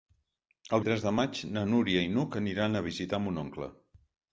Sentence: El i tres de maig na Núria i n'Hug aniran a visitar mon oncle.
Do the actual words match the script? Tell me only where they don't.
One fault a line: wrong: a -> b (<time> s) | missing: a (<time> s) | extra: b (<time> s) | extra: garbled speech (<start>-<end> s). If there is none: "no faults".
no faults